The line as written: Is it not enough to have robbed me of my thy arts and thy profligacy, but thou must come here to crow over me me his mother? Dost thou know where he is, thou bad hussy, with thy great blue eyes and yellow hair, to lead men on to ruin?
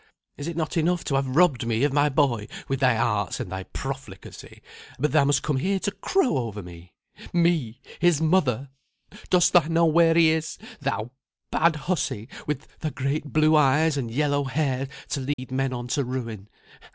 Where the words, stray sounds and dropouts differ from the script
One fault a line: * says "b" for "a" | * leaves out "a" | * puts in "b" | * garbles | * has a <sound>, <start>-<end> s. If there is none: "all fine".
* puts in "boy with"
* has a dropout, 15.3-15.4 s